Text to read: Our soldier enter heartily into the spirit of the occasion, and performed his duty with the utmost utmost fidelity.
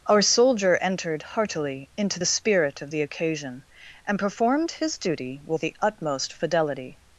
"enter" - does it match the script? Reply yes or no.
no